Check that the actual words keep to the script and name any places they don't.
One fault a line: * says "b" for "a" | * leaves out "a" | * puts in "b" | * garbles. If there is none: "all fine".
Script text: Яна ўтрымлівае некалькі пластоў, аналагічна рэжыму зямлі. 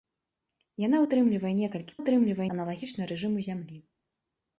* says "ўтрымлівае" for "пластоў"